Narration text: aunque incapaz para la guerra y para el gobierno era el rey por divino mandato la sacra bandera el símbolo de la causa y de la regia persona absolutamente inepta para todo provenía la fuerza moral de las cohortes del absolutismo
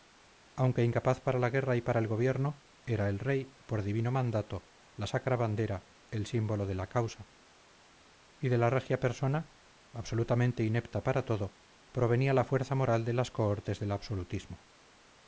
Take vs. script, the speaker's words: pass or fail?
pass